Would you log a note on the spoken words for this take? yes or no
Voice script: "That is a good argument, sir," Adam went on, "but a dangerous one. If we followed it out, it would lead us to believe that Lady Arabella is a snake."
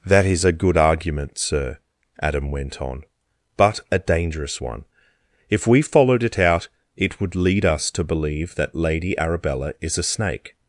no